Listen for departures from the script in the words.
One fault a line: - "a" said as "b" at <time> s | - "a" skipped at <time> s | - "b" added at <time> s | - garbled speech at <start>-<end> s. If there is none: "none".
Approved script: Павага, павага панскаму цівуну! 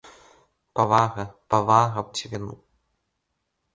- "панскаму" skipped at 2.0 s